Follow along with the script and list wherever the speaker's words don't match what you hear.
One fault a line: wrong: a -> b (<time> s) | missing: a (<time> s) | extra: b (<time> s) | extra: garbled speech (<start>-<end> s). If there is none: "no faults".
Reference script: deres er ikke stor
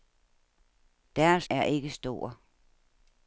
no faults